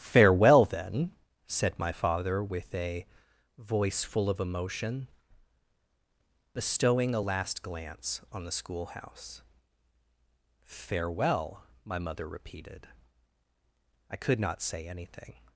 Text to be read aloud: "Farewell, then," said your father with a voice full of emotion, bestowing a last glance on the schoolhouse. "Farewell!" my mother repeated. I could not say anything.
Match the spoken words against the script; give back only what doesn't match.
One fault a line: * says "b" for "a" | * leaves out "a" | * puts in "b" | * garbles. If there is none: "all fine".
* says "my" for "your"